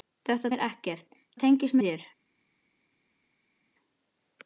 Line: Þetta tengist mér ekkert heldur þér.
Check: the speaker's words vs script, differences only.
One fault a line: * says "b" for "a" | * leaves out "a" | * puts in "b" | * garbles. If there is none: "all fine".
* leaves out "tengist"
* says "tengist" for "heldur"